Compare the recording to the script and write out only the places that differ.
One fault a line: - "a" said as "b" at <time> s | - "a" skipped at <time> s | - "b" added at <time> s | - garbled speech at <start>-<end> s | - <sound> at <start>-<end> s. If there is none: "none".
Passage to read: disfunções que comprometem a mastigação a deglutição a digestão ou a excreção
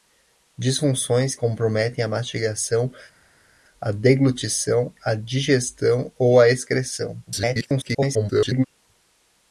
- "que" skipped at 1.4 s
- garbled speech at 7.3-8.7 s